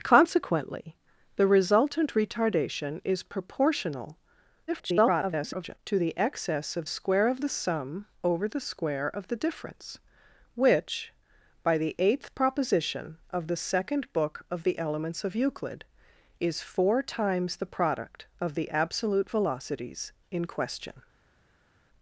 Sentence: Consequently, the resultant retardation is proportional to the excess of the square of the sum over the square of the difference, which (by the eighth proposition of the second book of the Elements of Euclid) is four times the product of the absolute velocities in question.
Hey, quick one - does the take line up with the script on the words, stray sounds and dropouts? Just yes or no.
no